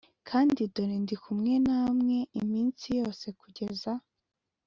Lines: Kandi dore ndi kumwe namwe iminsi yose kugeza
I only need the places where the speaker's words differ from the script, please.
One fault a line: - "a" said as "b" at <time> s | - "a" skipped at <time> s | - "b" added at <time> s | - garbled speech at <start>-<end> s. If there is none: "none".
none